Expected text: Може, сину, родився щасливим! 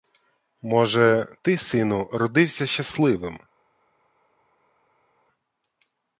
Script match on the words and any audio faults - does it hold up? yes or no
no